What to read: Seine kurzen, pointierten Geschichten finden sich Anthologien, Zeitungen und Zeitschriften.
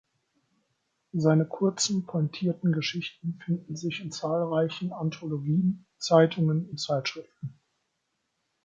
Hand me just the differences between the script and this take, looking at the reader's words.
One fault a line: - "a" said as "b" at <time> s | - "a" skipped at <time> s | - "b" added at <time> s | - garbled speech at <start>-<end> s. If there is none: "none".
- "in zahlreichen" added at 4.0 s